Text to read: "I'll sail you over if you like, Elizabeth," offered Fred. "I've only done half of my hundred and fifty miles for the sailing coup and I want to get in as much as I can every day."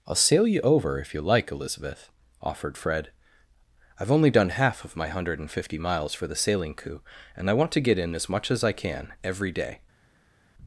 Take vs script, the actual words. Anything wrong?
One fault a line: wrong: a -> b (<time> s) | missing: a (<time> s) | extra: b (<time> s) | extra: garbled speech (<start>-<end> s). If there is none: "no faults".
no faults